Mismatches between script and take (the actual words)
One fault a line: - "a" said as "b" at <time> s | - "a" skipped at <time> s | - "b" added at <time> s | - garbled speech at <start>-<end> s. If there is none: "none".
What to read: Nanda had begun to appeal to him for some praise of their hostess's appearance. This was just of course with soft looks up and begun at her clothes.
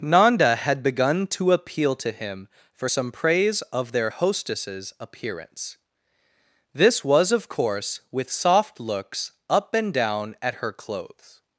- "just" skipped at 7.3 s
- "begun" said as "down" at 9.9 s